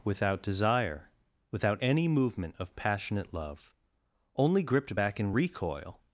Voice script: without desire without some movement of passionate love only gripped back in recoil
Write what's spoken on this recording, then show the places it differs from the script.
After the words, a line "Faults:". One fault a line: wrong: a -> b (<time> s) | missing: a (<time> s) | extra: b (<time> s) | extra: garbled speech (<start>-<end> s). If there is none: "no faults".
without desire without any movement of passionate love only gripped back in recoil
Faults:
wrong: some -> any (1.8 s)